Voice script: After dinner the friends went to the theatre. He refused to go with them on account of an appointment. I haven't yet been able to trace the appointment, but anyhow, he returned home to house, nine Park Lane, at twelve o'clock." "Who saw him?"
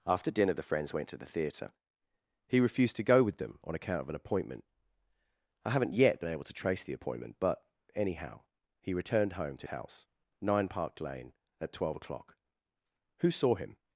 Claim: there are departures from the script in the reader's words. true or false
false